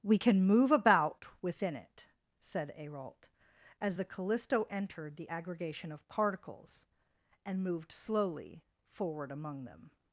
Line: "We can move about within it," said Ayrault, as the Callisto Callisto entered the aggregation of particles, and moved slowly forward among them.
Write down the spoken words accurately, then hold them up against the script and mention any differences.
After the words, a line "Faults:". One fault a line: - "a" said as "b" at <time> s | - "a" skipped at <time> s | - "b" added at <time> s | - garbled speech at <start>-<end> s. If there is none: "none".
"We can move about within it," said Ayrault, as the Callisto entered the aggregation of particles, and moved slowly forward among them.
Faults:
- "Callisto" skipped at 4.7 s